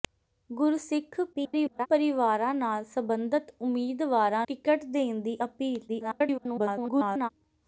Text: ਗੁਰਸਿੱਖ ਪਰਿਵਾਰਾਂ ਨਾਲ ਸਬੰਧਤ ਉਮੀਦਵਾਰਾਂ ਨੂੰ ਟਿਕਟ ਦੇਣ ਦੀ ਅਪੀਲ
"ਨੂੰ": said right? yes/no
no